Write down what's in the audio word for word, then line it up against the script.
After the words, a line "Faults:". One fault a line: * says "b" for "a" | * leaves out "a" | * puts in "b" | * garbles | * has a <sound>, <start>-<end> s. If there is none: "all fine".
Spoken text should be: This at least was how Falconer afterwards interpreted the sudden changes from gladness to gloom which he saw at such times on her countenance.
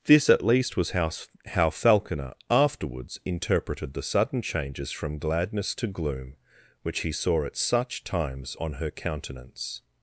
This at least was how how Falconer afterwards interpreted the sudden changes from gladness to gloom which he saw at such times on her countenance.
Faults:
* puts in "how"